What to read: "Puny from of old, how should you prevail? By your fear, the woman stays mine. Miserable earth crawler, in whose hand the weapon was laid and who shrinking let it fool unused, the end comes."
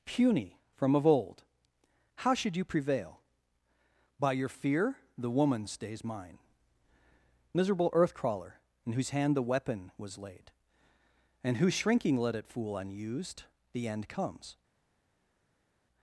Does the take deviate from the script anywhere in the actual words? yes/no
no